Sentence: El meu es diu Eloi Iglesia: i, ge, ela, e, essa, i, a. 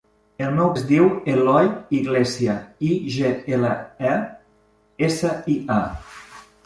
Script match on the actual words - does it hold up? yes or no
yes